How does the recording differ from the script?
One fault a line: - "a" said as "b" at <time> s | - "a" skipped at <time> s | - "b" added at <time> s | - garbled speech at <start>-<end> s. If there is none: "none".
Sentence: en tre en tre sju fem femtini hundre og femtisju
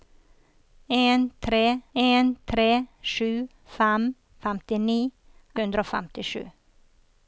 none